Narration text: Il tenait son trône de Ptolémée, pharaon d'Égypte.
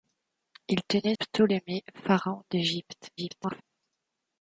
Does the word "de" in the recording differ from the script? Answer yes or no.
yes